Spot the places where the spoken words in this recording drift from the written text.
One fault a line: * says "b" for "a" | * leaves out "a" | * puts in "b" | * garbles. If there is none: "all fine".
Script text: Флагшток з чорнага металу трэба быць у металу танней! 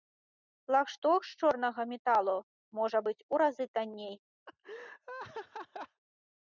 * says "можа" for "трэба"
* says "разы" for "металу"